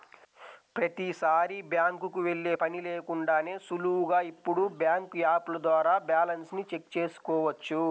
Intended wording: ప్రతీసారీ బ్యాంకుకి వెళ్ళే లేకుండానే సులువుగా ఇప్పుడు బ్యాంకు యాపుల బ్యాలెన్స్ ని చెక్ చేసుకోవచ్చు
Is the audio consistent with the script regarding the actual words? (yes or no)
no